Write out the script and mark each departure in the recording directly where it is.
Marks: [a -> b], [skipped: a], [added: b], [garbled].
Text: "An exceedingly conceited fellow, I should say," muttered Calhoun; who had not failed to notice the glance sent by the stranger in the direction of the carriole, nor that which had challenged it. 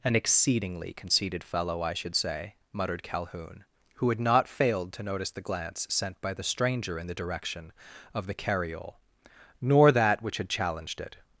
"An exceedingly conceited fellow, I should say," muttered Calhoun; who had not failed to notice the glance sent by the stranger in the direction of the carriole, nor that which had challenged it.